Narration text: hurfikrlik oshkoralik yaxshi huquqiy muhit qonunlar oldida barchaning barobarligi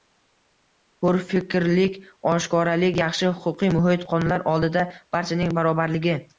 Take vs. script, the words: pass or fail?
pass